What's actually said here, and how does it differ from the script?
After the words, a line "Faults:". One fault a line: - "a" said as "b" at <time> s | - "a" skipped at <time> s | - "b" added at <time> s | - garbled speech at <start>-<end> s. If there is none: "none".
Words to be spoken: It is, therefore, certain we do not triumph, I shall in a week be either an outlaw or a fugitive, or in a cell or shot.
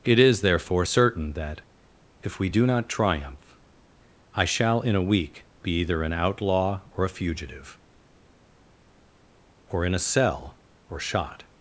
It is, therefore, certain that, if we do not triumph, I shall in a week be either an outlaw or a fugitive, or in a cell or shot.
Faults:
- "that if" added at 1.3 s